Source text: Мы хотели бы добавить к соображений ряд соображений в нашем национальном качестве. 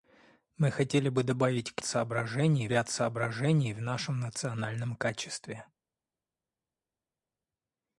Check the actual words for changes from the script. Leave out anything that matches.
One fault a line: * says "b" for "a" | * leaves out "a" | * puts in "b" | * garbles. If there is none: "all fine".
all fine